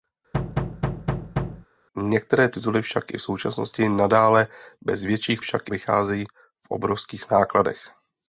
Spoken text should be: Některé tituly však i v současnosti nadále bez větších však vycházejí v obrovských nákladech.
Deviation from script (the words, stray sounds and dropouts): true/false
true